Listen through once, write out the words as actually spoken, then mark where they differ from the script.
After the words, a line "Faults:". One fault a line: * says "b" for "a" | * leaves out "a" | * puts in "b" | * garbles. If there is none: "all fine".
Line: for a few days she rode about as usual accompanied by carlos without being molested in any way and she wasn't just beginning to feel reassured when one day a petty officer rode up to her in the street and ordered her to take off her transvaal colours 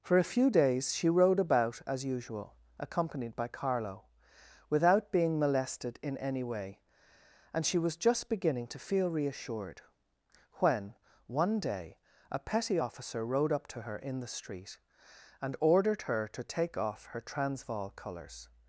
for a few days she rode about as usual accompanied by carlo without being molested in any way and she was just beginning to feel reassured when one day a petty officer rode up to her in the street and ordered her to take off her transvaal colours
Faults:
* says "carlo" for "carlos"
* says "was" for "wasn't"